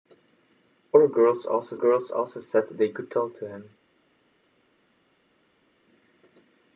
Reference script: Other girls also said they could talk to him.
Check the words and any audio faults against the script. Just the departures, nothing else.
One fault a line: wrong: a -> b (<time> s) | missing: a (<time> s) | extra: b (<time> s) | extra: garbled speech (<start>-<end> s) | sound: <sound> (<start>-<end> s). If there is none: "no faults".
extra: girls also (1.7 s)